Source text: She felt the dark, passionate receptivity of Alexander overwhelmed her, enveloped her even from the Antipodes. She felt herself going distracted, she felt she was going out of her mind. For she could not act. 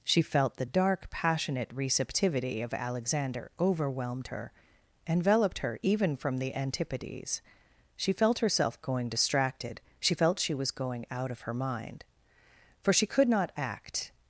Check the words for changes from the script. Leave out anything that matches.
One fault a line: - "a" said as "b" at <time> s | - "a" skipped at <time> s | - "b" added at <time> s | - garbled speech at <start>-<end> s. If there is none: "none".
none